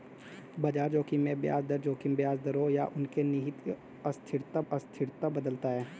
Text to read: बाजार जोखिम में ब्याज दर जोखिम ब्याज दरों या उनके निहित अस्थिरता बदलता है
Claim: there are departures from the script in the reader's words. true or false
true